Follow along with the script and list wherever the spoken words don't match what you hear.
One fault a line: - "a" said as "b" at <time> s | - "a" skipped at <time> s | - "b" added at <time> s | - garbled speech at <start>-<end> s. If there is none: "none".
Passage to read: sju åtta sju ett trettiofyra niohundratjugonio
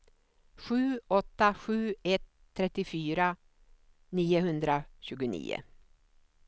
none